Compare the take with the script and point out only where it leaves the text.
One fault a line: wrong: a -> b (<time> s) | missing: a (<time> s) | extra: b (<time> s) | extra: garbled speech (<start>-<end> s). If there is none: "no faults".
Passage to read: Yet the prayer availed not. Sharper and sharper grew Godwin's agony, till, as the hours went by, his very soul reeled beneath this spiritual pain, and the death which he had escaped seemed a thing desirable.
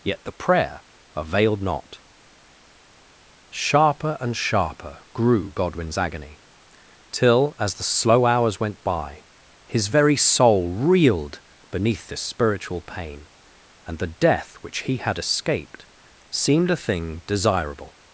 extra: slow (7.8 s)